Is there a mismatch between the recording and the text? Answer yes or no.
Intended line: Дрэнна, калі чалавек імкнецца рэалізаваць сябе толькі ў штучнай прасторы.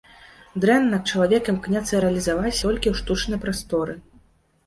yes